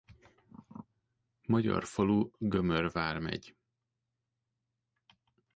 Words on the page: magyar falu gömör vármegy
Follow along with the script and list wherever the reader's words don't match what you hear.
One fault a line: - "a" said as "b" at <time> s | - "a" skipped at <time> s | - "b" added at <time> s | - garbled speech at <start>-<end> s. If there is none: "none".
none